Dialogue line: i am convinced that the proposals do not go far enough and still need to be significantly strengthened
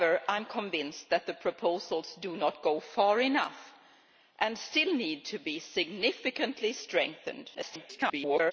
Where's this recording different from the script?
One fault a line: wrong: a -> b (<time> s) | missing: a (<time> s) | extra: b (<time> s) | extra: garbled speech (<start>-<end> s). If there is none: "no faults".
extra: garbled speech (7.5-8.5 s)